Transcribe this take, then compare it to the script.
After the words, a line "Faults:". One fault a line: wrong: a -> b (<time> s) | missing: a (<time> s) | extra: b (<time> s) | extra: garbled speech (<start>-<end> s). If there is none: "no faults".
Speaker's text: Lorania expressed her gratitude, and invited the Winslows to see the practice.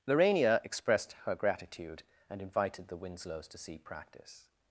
Lorania expressed her gratitude, and invited the Winslows to see practice.
Faults:
missing: the (3.8 s)